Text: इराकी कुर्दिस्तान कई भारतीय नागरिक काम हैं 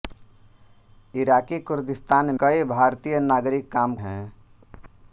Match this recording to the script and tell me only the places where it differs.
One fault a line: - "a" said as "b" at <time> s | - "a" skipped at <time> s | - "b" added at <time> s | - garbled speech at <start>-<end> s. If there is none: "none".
none